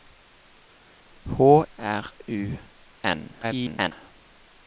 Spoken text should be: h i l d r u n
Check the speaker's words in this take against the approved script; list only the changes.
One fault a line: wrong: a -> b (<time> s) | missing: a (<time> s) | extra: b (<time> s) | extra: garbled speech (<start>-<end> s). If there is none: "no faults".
missing: i l d (1.6 s)
extra: garbled speech (3.4-3.9 s)